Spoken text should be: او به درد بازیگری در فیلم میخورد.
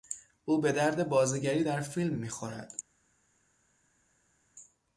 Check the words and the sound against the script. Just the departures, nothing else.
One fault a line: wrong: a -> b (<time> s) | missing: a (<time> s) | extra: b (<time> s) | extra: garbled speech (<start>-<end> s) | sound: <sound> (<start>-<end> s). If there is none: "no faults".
no faults